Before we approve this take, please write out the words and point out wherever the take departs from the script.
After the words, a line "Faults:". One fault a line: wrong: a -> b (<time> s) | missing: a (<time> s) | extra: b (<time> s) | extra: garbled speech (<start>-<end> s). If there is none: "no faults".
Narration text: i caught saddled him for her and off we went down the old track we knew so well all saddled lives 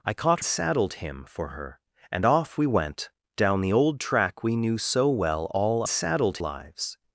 i caught saddled him for her and off we went down the old track we knew so well all saddled lives
Faults:
no faults